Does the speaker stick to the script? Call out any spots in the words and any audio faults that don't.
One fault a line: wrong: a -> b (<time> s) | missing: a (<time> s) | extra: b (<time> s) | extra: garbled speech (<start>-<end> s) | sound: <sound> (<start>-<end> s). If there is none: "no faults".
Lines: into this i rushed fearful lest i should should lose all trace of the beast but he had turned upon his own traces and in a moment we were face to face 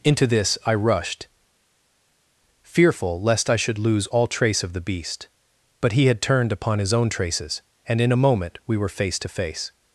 missing: should (3.8 s)